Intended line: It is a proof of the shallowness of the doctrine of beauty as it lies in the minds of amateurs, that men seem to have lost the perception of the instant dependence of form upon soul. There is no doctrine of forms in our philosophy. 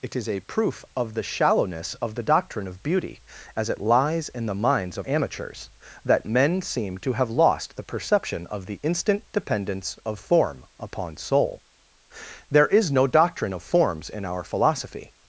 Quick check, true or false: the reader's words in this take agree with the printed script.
true